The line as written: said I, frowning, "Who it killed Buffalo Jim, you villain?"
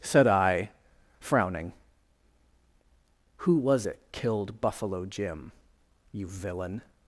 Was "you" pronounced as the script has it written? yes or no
yes